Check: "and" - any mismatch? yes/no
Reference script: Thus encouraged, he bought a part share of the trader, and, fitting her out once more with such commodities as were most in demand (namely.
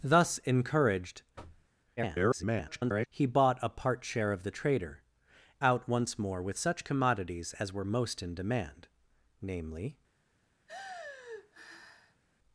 yes